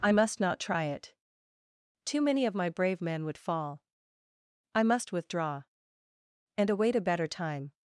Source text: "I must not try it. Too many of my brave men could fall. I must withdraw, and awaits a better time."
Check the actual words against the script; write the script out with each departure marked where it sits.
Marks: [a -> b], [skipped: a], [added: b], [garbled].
"I must not try it. Too many of my brave men [could -> would] fall. I must withdraw, and [awaits -> await] a better time."